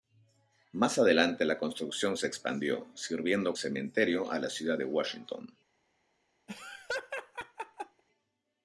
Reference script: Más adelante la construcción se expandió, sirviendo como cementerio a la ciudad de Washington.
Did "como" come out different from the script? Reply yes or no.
yes